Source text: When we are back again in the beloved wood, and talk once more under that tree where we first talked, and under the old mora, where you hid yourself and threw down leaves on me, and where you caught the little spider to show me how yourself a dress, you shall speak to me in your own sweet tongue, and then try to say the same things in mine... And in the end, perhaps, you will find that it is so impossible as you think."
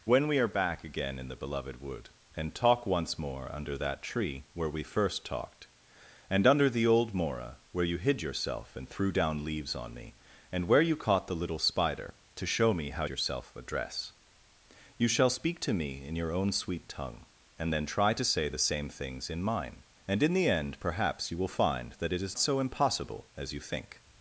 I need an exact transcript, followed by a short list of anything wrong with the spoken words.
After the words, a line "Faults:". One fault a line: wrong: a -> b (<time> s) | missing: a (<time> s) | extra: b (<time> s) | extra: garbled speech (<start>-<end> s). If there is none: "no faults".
When we are back again in the beloved wood, and talk once more under that tree where we first talked, and under the old mora, where you hid yourself and threw down leaves on me, and where you caught the little spider to show me how yourself a dress, you shall speak to me in your own sweet tongue, and then try to say the same things in mine... And in the end, perhaps, you will find that it is so impossible as you think."
Faults:
no faults